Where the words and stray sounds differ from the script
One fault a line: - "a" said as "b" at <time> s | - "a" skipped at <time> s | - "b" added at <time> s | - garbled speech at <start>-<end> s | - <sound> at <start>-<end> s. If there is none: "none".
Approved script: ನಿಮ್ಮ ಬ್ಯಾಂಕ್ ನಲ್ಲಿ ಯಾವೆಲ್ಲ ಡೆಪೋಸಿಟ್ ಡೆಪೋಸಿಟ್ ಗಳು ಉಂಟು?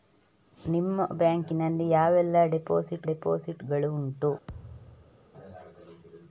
- thud at 4.5-5.3 s